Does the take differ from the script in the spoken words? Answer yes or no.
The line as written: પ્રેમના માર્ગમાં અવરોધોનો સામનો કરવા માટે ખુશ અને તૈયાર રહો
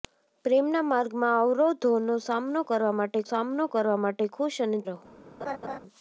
yes